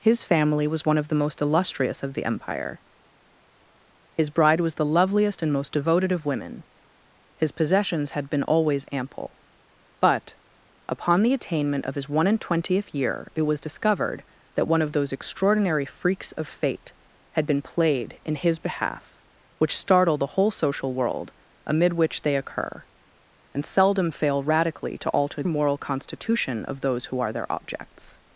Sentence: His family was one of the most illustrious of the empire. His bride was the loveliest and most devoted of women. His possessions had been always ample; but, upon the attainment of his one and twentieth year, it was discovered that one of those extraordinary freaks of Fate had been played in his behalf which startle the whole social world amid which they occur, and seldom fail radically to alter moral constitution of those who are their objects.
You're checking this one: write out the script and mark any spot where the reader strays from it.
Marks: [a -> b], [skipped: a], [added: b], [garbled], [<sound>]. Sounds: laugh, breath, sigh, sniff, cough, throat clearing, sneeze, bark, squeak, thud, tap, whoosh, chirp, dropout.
His family was one of the most illustrious of the empire. His bride was the loveliest and most devoted of women. His possessions had been always ample; but, upon the attainment of his one and twentieth year, it was discovered that one of those extraordinary freaks of Fate had been played in his behalf which startle the whole social world amid which they occur, and seldom fail radically to alter moral constitution of those who are their objects.